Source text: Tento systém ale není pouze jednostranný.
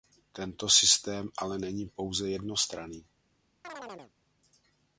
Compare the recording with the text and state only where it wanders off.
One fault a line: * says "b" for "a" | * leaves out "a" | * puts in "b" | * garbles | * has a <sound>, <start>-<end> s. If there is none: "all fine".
* has a chirp, 3.6-4.1 s